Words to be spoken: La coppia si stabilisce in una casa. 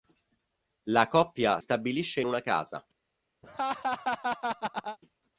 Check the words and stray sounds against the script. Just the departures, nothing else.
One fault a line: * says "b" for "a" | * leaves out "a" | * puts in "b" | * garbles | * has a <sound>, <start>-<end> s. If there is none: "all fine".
* leaves out "si"
* has a laugh, 3.4-5.0 s